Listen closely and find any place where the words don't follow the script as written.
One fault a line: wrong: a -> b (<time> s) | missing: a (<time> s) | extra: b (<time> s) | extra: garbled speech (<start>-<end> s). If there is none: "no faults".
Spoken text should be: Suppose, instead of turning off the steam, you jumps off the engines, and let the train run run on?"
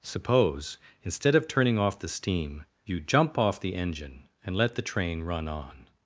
wrong: jumps -> jump (3.0 s)
wrong: engines -> engine (3.8 s)
missing: run (5.5 s)